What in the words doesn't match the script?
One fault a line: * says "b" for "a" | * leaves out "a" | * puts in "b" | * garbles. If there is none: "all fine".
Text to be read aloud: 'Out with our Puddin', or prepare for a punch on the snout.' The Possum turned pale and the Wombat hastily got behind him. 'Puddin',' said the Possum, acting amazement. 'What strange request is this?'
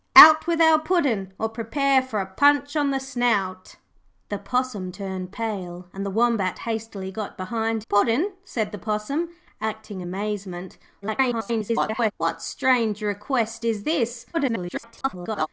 * leaves out "him"
* garbles
* garbles